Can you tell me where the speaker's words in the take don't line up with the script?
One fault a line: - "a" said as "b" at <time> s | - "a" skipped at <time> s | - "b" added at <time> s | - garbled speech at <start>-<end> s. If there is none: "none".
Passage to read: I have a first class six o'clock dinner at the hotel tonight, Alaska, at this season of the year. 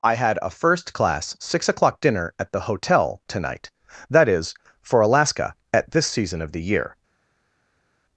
- "have" said as "had" at 0.1 s
- "that is for" added at 4.1 s